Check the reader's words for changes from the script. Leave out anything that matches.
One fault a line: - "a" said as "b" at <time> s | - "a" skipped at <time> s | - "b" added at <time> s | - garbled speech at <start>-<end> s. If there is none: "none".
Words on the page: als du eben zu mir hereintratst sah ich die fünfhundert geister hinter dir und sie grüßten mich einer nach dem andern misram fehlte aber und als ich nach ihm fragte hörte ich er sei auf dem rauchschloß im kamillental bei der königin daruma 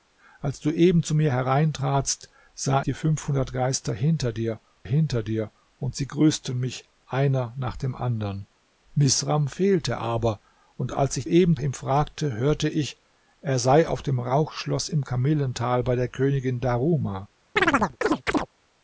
- "ich" skipped at 2.9 s
- "hinter dir" added at 4.8 s
- "nach" said as "eben" at 11.2 s